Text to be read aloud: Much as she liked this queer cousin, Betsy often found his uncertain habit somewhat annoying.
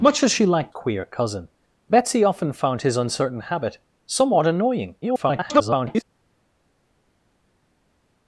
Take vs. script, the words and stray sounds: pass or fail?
fail